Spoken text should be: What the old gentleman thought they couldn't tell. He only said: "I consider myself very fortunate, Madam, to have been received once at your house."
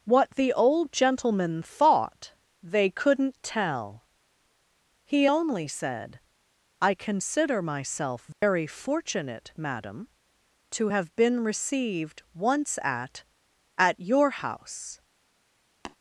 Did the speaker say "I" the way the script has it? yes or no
yes